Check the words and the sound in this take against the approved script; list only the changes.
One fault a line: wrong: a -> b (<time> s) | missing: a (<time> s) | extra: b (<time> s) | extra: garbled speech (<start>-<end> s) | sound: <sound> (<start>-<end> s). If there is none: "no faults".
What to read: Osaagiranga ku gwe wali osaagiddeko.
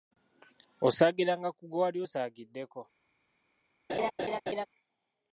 sound: laugh (3.9-4.7 s)